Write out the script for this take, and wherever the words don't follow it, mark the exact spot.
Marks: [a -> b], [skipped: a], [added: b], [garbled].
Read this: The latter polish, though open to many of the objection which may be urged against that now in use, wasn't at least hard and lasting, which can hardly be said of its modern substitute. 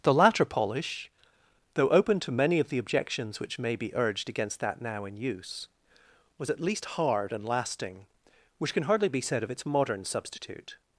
The latter polish, though open to many of the [objection -> objections] which may be urged against that now in use, [wasn't -> was] at least hard and lasting, which can hardly be said of its modern substitute.